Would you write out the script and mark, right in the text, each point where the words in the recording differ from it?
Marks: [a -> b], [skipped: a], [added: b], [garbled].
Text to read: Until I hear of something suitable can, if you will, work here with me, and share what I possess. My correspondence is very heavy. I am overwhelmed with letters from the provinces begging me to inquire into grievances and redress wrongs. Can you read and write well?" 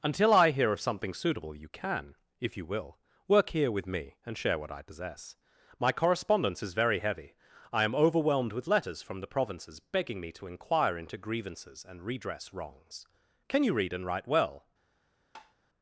Until I hear of something suitable [added: you] can, if you will, work here with me, and share what I possess. My correspondence is very heavy. I am overwhelmed with letters from the provinces begging me to inquire into grievances and redress wrongs. Can you read and write well?"